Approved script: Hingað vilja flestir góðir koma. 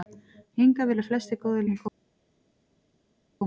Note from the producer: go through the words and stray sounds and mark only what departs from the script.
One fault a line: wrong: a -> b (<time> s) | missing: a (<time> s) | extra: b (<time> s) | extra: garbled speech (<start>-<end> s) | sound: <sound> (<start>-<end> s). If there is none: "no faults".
no faults